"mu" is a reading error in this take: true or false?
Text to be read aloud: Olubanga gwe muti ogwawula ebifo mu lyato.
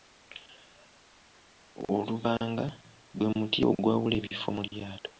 false